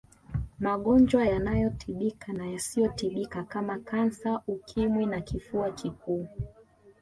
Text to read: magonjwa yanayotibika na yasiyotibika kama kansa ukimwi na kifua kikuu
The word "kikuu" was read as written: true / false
true